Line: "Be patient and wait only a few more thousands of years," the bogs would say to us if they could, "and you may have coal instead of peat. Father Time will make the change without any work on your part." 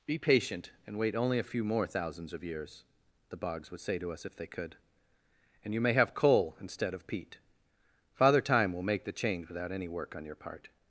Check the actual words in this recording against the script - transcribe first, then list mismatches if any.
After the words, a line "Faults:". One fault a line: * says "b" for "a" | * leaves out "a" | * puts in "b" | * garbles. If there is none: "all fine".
"Be patient and wait only a few more thousands of years," the bogs would say to us if they could, "and you may have coal instead of peat. Father Time will make the change without any work on your part."
Faults:
all fine